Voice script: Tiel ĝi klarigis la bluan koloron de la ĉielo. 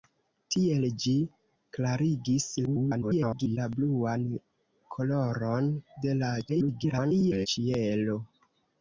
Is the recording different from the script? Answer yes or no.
yes